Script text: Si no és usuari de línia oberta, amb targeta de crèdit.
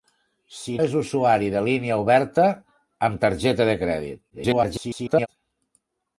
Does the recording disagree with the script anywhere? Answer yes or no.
yes